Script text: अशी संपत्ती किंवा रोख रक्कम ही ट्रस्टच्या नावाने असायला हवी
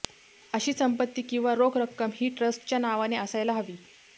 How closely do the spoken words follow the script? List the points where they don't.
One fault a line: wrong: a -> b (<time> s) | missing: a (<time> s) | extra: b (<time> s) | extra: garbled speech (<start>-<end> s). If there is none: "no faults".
no faults